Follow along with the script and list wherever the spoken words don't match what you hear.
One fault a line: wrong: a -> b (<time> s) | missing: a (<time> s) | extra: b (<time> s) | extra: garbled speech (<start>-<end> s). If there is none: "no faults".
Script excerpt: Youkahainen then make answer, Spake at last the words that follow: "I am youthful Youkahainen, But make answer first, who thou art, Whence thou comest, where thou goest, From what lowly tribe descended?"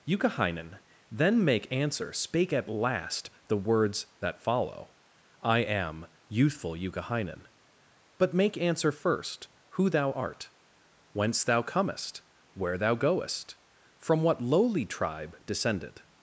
no faults